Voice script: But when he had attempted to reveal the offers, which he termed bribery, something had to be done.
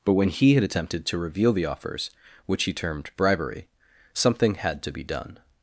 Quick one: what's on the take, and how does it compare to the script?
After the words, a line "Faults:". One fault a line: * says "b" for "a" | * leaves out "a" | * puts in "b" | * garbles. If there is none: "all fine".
But when he had attempted to reveal the offers, which he termed bribery, something had to be done.
Faults:
all fine